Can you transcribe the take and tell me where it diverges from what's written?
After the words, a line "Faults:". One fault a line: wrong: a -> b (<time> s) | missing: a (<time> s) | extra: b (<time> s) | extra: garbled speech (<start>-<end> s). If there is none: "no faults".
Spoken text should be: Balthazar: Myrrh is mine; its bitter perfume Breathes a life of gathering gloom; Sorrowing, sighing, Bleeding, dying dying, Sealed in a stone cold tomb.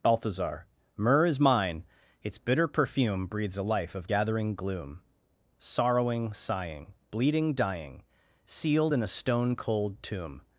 Balthazar: Myrrh is mine; its bitter perfume Breathes a life of gathering gloom; Sorrowing, sighing, Bleeding, dying, Sealed in a stone cold tomb.
Faults:
missing: dying (8.0 s)